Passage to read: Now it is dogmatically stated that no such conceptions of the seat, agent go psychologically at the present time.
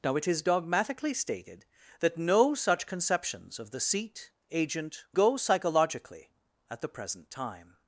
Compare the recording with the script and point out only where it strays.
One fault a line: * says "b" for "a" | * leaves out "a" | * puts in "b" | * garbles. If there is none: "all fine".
all fine